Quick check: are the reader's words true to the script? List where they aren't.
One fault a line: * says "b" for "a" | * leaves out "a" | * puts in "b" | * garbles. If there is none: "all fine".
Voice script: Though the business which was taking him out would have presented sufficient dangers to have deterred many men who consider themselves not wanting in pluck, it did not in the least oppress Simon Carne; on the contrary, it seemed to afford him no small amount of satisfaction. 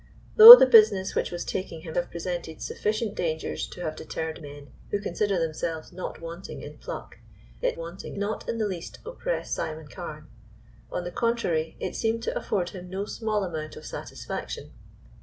* leaves out "out would"
* leaves out "many"
* says "wanting" for "did"